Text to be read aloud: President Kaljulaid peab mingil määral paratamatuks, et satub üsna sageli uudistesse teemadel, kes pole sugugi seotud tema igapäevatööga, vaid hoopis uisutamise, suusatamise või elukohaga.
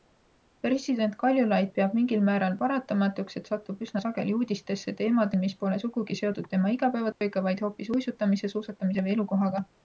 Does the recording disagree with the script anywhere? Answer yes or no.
yes